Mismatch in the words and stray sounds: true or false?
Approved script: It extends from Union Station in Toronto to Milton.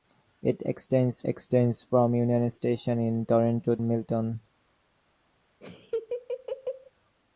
true